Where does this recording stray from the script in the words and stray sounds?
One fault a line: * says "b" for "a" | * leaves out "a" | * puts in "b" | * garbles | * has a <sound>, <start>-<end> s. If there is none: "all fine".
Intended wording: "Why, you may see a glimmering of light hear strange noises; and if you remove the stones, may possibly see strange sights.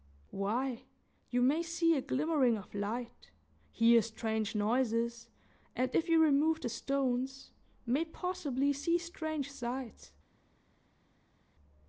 all fine